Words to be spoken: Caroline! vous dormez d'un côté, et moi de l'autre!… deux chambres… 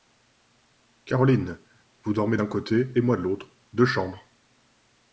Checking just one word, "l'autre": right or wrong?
right